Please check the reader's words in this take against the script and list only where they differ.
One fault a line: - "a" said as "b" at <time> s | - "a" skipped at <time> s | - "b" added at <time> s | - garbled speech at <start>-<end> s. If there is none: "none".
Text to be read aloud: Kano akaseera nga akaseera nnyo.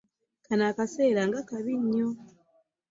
- "akaseera" said as "kabi" at 1.5 s